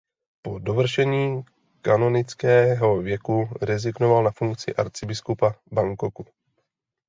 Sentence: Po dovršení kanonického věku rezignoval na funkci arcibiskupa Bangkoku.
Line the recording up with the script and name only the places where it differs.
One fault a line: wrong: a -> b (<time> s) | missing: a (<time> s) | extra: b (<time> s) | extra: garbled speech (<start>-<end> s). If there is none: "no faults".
no faults